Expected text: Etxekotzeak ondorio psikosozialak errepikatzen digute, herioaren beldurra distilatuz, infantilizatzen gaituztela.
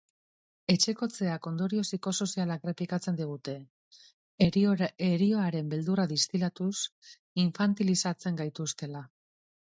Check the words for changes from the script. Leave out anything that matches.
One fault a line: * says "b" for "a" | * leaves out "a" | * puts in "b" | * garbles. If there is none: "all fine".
all fine